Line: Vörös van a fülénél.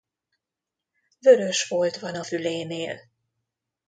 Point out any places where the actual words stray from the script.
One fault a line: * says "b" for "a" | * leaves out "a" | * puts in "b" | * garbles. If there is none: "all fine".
* puts in "folt"